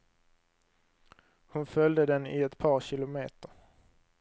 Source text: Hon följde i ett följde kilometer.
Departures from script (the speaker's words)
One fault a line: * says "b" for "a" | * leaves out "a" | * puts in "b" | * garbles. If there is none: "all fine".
* puts in "den"
* says "par" for "följde"